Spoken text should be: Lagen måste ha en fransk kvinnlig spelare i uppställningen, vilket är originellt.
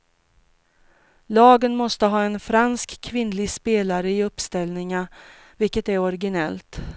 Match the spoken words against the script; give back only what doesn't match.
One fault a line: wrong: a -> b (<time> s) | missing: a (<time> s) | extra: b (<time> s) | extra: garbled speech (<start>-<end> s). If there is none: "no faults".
no faults